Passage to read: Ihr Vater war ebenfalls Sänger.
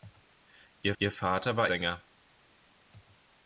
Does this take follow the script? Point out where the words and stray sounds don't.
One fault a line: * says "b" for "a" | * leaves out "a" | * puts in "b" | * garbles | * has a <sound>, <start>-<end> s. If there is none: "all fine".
* puts in "ihr"
* leaves out "ebenfalls"